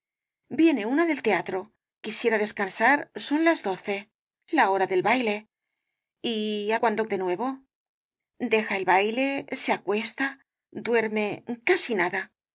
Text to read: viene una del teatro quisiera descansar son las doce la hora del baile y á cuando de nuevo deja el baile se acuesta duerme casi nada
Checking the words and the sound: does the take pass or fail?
pass